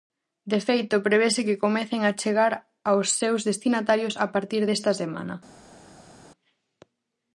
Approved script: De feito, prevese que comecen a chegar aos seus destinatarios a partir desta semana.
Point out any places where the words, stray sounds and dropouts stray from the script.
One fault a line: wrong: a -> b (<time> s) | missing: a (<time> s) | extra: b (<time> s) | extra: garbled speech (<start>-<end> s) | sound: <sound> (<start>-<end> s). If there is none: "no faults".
no faults